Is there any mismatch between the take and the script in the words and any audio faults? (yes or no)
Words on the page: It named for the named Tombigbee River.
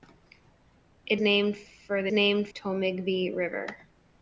no